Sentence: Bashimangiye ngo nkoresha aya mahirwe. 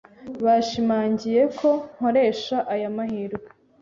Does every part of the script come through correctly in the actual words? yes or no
no